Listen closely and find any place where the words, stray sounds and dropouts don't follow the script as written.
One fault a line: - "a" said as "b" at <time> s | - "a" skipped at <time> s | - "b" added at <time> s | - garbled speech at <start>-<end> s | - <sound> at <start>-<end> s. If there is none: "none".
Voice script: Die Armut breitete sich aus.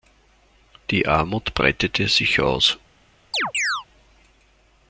- chirp at 3.3-3.9 s